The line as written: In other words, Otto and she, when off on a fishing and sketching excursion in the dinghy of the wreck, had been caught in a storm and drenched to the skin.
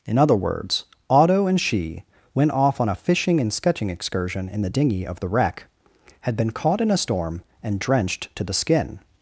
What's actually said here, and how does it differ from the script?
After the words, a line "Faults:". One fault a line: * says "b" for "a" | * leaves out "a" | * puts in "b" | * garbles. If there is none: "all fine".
In other words, Otto and she, went off on a fishing and sketching excursion in the dinghy of the wreck, had been caught in a storm and drenched to the skin.
Faults:
* says "went" for "when"